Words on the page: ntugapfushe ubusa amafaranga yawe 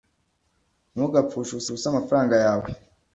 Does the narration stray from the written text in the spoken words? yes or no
yes